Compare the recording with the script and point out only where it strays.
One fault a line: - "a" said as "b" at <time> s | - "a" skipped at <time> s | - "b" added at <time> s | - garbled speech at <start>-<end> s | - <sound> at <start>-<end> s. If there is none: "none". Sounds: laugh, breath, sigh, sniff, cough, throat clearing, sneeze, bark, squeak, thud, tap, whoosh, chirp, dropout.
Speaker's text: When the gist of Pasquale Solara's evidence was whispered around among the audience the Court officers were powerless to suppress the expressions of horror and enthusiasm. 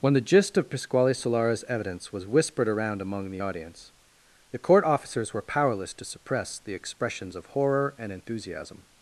none